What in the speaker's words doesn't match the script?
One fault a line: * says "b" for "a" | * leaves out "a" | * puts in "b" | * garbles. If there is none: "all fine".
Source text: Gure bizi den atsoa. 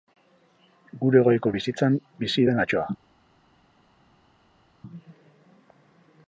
* puts in "goiko bizitzan"